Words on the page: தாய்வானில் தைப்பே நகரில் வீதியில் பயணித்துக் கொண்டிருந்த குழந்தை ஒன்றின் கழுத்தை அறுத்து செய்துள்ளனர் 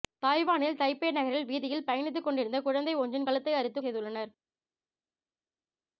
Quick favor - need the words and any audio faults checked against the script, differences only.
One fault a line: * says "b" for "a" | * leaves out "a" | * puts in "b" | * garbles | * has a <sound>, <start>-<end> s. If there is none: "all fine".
all fine